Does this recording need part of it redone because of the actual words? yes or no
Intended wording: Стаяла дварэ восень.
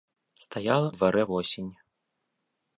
no